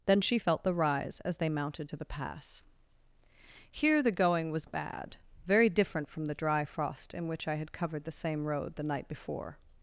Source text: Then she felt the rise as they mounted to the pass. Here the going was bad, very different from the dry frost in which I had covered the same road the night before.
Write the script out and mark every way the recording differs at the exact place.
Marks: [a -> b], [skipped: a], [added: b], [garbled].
Then she felt the rise as they mounted to the pass. Here the going was bad, very different from the dry frost in which I had covered the same road the night before.